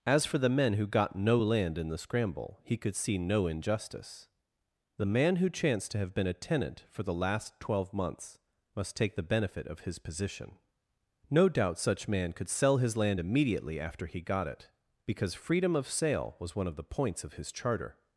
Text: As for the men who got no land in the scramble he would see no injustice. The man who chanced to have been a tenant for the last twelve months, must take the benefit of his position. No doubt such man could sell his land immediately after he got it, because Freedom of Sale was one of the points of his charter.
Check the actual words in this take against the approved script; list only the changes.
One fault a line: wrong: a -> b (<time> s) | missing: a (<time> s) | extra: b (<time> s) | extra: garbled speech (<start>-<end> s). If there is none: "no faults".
wrong: would -> could (2.8 s)